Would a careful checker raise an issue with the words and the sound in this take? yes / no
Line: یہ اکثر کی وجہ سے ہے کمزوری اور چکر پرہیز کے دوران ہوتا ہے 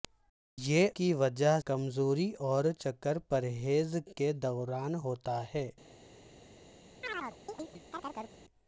yes